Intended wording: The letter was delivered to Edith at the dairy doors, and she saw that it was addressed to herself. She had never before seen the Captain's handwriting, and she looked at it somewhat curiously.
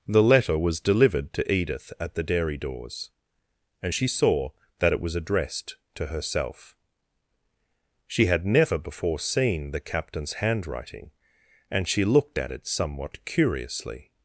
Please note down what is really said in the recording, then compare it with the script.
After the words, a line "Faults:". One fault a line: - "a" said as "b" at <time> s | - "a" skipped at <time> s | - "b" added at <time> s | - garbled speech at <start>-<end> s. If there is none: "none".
The letter was delivered to Edith at the dairy doors, and she saw that it was addressed to herself. She had never before seen the Captain's handwriting, and she looked at it somewhat curiously.
Faults:
none